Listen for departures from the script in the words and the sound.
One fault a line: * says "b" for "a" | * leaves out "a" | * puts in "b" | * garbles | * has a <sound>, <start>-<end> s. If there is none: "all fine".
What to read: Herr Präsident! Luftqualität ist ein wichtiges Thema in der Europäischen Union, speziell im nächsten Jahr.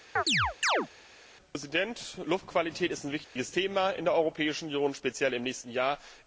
* has a chirp, 0.2-0.9 s
* has a dropout, 3.2-3.4 s